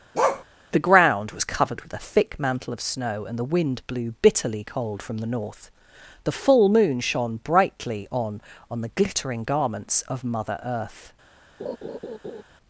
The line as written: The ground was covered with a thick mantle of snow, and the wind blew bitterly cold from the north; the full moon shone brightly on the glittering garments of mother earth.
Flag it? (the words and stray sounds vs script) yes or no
yes